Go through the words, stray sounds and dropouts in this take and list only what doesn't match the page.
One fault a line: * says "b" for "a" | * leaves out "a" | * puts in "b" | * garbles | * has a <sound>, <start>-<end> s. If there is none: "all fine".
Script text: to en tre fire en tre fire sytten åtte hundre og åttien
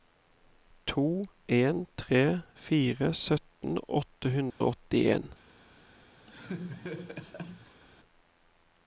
* leaves out "en tre fire"
* has a dropout, 4.5-4.6 s
* has a laugh, 6.3-7.8 s